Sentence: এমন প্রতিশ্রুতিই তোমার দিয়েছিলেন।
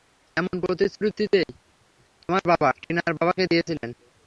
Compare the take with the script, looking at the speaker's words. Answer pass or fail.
fail